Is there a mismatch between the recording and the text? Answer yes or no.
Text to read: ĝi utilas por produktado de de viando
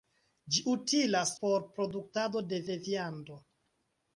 no